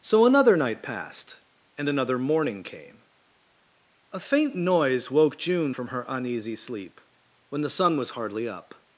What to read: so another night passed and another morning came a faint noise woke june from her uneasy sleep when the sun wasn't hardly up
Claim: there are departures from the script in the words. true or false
true